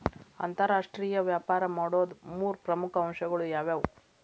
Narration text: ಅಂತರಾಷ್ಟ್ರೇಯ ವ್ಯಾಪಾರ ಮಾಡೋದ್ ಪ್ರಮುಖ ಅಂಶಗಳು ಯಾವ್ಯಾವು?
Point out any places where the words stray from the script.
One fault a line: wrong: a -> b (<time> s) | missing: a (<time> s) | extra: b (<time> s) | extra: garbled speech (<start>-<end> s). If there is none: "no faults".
extra: ಮೂರ್ (2.3 s)